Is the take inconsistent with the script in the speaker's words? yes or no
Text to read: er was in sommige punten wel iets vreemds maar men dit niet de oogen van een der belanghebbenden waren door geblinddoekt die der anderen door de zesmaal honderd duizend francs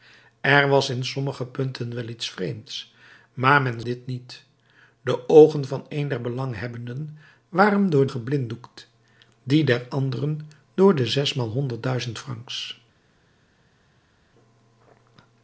no